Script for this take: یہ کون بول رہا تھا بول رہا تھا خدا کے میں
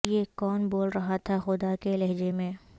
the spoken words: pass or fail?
fail